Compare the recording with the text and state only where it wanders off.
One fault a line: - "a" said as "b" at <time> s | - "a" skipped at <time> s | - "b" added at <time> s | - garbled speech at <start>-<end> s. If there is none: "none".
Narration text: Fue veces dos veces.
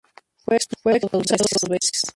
- "veces" said as "expulsado" at 0.5 s